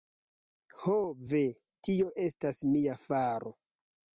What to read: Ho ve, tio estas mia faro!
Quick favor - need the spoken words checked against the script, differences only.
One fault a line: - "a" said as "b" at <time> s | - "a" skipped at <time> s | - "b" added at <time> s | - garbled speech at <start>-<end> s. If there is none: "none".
none